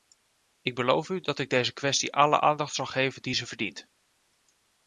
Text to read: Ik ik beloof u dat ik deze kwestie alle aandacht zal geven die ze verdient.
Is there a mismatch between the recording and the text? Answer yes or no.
yes